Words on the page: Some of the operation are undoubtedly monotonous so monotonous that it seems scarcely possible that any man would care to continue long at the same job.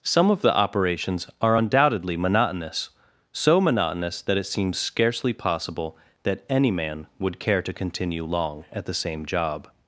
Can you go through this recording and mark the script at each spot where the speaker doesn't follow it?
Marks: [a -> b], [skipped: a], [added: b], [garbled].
Some of the [operation -> operations] are undoubtedly monotonous so monotonous that it seems scarcely possible that any man would care to continue long at the same job.